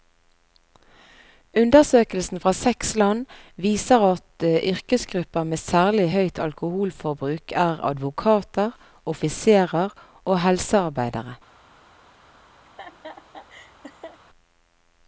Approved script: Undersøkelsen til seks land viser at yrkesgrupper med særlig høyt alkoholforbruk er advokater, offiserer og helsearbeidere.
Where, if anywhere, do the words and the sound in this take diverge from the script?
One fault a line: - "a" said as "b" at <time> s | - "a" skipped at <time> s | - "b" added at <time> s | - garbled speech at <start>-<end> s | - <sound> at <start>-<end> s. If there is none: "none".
- "til" said as "fra" at 2.4 s
- laugh at 12.7-14.2 s